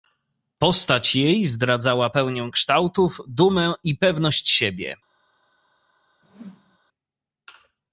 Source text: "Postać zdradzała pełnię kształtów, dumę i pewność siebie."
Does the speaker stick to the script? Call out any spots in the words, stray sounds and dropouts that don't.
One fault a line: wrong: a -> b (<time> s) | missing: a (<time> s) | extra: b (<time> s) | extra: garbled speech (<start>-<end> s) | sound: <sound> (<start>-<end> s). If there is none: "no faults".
extra: jej (1.1 s)
sound: whoosh (6.2-6.8 s)